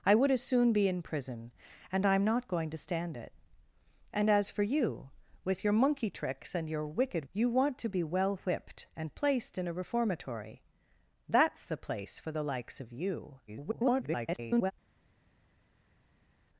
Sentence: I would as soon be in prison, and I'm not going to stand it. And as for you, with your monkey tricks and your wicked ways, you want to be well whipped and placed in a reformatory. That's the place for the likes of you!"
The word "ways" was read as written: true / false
false